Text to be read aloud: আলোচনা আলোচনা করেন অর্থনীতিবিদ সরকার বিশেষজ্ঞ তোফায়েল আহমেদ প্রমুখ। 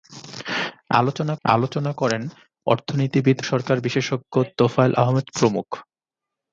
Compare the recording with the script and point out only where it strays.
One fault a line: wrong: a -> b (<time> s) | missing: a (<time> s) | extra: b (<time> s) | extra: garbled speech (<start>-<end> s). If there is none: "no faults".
no faults